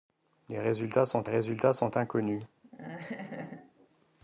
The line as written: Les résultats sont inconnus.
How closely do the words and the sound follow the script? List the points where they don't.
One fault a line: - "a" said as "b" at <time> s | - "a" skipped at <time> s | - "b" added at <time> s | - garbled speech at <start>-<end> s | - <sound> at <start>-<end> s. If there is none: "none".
- "résultats sont" added at 1.3 s
- laugh at 2.6-3.9 s